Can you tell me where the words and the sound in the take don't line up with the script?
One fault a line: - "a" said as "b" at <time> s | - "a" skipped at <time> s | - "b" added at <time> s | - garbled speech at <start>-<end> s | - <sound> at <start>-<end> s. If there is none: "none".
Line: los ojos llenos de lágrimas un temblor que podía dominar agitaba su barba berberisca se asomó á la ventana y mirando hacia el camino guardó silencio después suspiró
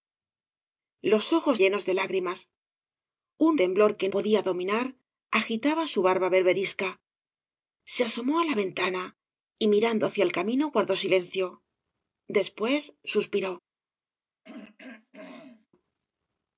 - throat clearing at 14.4-15.7 s